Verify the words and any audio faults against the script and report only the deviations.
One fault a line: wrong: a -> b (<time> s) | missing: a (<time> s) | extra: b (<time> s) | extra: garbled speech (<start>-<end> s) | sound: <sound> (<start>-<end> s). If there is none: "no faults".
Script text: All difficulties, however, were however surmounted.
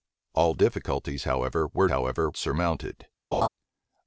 sound: laugh (3.3-3.5 s)